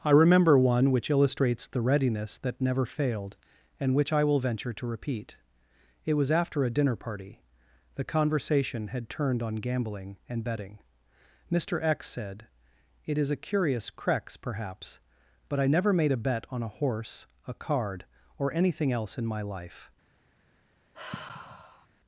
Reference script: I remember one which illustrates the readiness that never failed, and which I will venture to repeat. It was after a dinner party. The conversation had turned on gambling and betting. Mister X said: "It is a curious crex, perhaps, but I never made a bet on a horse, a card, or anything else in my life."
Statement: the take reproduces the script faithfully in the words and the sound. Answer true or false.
false